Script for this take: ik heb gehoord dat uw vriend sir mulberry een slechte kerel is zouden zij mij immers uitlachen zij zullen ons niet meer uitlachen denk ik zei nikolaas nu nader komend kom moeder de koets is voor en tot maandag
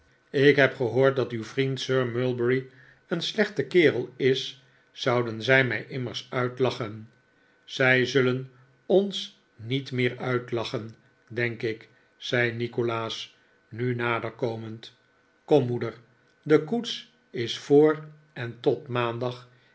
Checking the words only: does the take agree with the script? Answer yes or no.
yes